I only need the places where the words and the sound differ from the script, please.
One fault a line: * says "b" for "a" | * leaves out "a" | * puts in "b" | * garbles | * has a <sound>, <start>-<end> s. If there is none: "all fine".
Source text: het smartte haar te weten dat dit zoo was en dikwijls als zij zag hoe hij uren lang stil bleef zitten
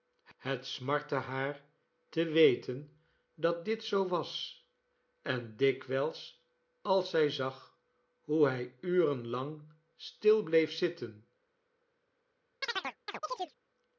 * has a chirp, 12.6-13.6 s